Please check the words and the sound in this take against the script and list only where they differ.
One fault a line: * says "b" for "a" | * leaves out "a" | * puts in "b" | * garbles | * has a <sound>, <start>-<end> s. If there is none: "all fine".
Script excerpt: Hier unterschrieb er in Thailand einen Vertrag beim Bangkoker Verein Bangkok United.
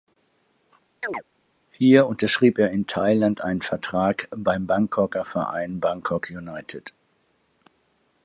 * has a chirp, 1.0-1.2 s